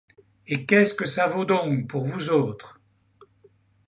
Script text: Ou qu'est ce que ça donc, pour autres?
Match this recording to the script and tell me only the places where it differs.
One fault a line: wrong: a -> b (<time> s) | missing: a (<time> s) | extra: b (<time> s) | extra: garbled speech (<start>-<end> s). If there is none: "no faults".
wrong: Ou -> Et (0.5 s)
extra: vaut (1.3 s)
extra: vous (2.0 s)